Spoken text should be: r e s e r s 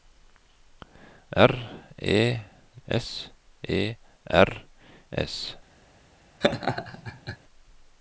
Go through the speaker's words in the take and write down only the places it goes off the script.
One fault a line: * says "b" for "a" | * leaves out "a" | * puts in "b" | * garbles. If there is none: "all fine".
all fine